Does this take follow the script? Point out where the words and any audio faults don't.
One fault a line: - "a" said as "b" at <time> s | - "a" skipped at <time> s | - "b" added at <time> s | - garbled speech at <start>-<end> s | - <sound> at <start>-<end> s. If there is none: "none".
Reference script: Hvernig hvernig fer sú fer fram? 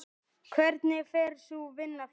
- "hvernig" skipped at 1.1 s
- "fer" said as "vinna" at 1.8 s